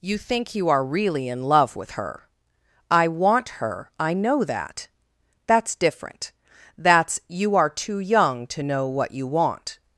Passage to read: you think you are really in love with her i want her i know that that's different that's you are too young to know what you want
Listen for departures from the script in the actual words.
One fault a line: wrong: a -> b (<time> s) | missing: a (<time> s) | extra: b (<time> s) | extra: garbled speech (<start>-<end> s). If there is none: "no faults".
no faults